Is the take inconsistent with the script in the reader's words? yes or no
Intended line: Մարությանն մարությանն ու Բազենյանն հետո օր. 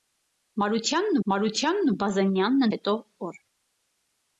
no